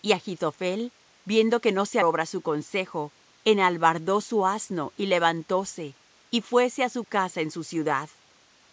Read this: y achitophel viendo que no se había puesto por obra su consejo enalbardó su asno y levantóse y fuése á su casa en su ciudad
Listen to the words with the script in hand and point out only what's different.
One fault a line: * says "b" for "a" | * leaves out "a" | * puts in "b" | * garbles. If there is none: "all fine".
* leaves out "había puesto por"